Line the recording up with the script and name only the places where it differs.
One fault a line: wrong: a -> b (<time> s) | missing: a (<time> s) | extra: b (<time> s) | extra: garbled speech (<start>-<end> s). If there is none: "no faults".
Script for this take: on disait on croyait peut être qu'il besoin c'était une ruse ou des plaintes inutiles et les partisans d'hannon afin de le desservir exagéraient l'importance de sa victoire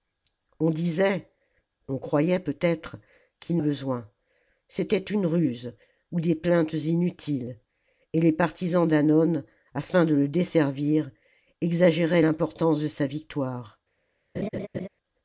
no faults